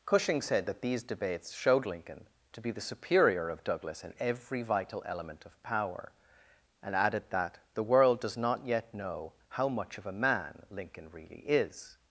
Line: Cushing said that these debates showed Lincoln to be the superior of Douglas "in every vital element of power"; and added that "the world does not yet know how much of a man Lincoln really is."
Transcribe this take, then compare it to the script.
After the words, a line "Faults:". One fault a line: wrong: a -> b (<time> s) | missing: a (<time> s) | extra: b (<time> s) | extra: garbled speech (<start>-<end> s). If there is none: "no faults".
Cushing said that these debates showed Lincoln to be the superior of Douglas "in every vital element of power"; and added that "the world does not yet know how much of a man Lincoln really is."
Faults:
no faults